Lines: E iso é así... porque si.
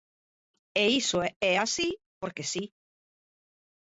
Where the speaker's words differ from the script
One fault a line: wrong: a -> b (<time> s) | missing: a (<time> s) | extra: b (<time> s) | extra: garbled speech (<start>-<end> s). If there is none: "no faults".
no faults